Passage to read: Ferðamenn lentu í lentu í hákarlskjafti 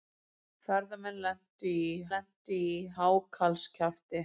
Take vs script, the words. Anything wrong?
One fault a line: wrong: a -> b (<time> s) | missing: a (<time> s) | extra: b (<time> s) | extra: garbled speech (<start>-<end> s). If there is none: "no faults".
no faults